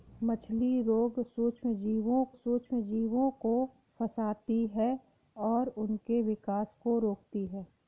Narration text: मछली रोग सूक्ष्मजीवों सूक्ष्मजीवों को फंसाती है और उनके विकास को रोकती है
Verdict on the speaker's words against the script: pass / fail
pass